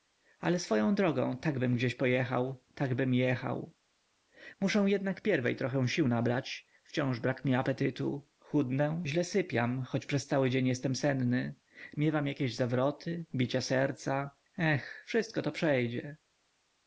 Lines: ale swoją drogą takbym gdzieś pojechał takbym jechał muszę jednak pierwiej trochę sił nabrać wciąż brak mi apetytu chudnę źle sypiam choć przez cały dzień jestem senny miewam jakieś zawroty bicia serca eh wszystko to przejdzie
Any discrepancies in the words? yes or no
no